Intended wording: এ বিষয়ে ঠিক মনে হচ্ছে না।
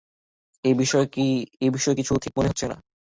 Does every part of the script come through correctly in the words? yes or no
no